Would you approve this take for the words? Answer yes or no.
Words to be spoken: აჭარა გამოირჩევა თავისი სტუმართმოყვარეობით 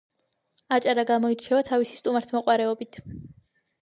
yes